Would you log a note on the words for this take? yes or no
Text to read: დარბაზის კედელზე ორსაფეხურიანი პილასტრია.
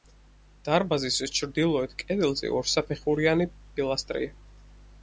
yes